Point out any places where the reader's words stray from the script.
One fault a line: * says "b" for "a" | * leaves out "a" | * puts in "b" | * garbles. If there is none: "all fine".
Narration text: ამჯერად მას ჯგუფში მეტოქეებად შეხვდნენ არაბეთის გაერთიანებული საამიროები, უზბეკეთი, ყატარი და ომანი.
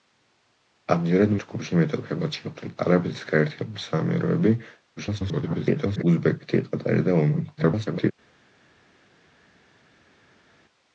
* leaves out "მას"
* garbles
* garbles